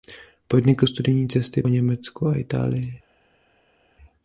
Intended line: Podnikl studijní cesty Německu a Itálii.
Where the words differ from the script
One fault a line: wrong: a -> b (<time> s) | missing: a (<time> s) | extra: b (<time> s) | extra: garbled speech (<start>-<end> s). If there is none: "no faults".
no faults